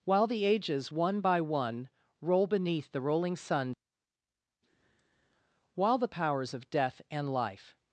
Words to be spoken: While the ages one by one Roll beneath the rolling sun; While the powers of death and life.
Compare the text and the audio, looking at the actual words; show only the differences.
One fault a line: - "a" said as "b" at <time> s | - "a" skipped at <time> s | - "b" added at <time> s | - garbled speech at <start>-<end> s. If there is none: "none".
none